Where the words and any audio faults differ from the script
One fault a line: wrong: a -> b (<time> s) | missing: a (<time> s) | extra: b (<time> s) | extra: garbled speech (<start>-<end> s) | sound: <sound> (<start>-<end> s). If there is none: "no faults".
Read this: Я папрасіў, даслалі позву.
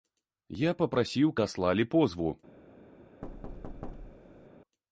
sound: thud (3.2-4.5 s)